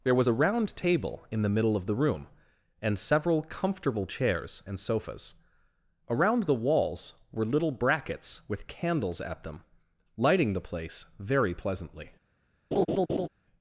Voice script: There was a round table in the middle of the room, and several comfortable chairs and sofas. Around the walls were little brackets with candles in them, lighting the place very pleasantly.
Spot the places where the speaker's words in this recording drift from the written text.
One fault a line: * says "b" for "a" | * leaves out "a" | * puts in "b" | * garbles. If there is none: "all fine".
* says "at" for "in"